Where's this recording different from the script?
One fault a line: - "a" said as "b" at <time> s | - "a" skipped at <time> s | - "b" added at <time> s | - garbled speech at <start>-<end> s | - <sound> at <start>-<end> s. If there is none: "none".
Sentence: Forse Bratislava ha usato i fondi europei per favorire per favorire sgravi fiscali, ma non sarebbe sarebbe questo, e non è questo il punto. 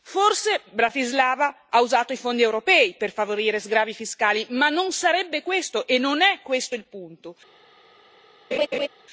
- "per favorire" skipped at 3.6 s
- "sarebbe" skipped at 5.4 s
- laugh at 8.5-8.9 s